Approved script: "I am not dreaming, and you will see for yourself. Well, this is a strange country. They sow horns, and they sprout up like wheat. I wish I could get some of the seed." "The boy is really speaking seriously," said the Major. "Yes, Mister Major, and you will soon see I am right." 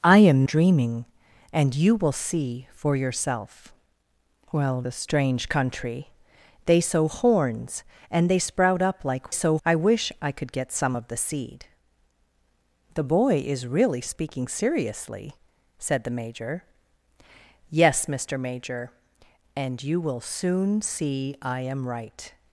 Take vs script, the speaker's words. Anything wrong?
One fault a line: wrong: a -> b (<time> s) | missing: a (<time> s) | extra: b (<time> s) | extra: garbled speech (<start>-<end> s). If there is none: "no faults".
missing: not (0.4 s)
missing: this is (4.8 s)
wrong: wheat -> sow (9.3 s)